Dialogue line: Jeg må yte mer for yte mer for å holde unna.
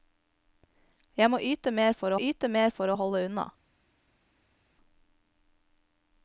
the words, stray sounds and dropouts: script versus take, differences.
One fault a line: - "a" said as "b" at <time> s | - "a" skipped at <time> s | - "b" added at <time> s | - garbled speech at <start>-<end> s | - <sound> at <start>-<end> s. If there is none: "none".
none